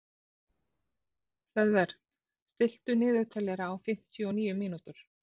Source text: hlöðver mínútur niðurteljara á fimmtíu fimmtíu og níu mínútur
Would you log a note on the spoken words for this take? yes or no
yes